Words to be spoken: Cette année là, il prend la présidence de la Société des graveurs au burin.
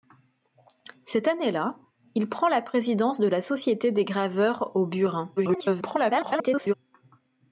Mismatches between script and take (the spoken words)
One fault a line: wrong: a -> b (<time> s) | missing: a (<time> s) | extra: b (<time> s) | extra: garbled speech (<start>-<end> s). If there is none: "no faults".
extra: garbled speech (5.4-6.7 s)